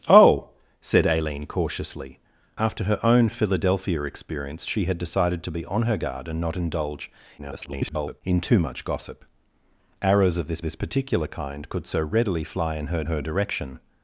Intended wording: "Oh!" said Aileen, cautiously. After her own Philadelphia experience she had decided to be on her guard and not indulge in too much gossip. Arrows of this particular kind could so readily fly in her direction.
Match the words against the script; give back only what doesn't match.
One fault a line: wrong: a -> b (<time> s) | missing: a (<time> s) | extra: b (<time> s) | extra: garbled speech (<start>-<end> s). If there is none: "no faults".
extra: garbled speech (7.4-8.2 s)
extra: this (10.6 s)
extra: her (13.0 s)